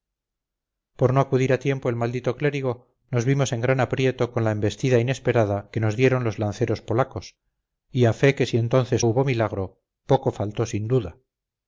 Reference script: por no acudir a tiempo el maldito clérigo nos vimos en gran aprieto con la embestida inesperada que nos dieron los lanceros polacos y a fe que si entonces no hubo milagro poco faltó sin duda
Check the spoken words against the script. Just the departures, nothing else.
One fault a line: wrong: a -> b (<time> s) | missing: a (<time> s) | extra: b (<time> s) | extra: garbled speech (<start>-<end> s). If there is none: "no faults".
missing: no (9.1 s)